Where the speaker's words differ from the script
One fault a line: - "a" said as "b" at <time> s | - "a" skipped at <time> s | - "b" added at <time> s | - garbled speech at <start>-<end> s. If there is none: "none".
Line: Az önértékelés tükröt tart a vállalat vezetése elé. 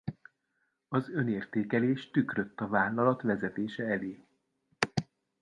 - "tart" skipped at 2.6 s